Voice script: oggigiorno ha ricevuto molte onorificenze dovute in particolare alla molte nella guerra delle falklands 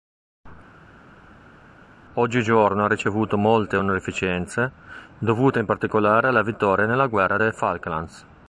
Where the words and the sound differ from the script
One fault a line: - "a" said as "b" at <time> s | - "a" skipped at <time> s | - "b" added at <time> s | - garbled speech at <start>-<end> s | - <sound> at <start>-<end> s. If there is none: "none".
- "molte" said as "vittoria" at 6.4 s